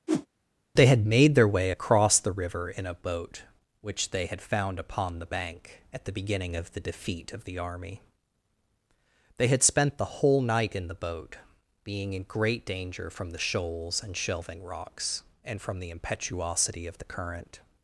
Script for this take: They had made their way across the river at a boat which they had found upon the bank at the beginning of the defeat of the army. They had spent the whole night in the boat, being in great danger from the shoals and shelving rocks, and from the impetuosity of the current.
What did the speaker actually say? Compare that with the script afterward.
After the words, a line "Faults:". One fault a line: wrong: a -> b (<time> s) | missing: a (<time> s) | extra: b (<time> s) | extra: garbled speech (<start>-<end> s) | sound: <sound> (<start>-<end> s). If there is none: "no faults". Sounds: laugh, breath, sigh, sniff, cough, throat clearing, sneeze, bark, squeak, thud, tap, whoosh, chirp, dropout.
They had made their way across the river in a boat which they had found upon the bank at the beginning of the defeat of the army. They had spent the whole night in the boat, being in great danger from the shoals and shelving rocks, and from the impetuosity of the current.
Faults:
sound: whoosh (0.1-0.3 s)
wrong: at -> in (2.7 s)